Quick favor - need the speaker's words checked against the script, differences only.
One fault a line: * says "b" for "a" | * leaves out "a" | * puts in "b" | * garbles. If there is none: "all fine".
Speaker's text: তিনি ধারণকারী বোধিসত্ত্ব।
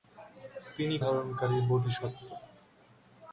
all fine